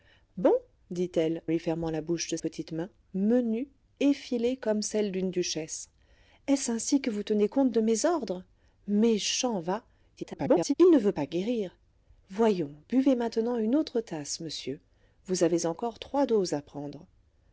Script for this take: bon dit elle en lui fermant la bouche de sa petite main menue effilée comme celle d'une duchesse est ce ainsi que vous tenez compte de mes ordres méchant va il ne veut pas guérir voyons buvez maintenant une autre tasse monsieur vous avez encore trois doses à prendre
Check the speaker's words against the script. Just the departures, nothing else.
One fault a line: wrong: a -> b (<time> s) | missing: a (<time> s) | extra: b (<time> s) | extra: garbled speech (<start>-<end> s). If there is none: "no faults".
missing: en (1.4 s)
missing: sa (2.4 s)
extra: garbled speech (10.2-10.7 s)